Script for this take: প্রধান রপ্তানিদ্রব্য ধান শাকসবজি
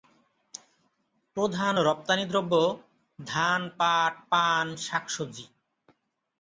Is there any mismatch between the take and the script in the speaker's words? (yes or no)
yes